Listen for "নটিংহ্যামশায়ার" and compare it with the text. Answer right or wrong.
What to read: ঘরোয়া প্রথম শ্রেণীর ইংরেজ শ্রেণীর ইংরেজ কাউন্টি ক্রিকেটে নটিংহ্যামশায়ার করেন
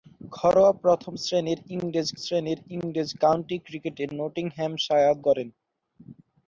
right